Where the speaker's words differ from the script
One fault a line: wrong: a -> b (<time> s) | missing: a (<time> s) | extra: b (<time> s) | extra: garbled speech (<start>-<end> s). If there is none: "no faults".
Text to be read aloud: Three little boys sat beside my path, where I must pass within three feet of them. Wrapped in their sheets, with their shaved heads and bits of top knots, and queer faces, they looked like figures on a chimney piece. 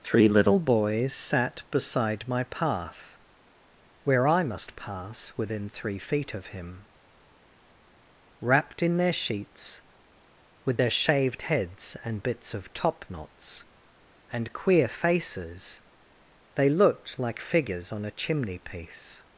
wrong: them -> him (6.5 s)